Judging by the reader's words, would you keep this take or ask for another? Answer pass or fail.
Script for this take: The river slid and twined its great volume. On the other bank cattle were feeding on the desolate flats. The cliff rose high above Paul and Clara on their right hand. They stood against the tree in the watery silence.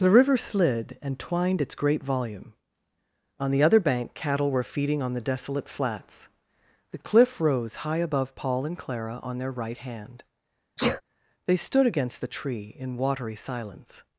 fail